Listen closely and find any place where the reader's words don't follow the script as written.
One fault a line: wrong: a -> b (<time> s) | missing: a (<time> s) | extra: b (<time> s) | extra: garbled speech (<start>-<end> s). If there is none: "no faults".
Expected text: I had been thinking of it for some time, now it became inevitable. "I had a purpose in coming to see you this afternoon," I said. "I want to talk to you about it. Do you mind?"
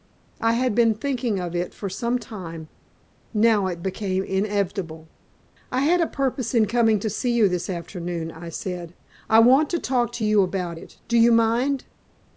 no faults